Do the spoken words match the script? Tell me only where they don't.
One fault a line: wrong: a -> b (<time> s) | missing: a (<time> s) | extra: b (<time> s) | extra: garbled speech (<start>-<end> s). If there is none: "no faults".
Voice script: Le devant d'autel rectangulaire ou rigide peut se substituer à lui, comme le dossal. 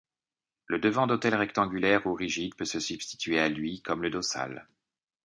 no faults